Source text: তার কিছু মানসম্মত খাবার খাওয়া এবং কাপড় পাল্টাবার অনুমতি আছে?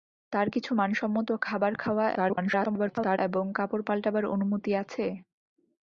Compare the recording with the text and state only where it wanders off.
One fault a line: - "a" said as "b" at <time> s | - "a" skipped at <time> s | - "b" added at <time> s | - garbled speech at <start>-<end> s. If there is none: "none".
- garbled speech at 2.1-3.2 s